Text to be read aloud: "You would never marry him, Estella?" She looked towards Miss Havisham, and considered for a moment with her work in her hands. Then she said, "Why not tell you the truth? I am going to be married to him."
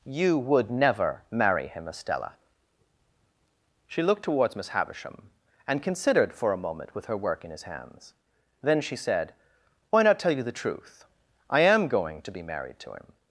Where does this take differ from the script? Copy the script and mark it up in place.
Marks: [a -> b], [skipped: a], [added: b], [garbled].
"You would never marry him, Estella?" She looked towards Miss Havisham, and considered for a moment with her work in [her -> his] hands. Then she said, "Why not tell you the truth? I am going to be married to him."